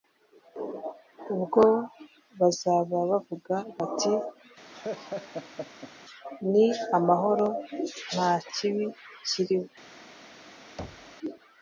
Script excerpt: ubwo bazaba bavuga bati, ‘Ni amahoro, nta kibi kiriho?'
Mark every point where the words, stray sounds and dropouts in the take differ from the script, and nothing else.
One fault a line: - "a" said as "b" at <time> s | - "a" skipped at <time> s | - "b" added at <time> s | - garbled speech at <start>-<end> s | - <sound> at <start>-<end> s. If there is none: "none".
- laugh at 4.7-5.9 s
- thud at 10.8-11.2 s